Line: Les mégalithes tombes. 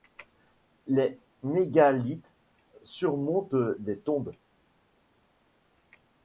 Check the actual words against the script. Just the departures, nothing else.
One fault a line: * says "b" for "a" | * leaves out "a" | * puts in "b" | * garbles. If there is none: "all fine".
* puts in "surmontent des"